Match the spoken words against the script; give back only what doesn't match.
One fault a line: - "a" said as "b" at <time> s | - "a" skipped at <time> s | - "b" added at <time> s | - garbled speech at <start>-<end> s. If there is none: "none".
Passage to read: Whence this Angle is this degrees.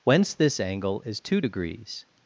- "this" said as "two" at 1.2 s